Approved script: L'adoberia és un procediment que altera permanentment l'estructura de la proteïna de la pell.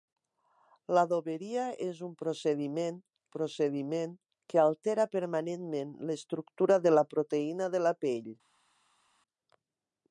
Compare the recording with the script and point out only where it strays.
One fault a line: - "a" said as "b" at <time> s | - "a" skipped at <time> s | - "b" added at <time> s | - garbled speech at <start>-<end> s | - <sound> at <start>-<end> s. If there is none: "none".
- "procediment" added at 3.3 s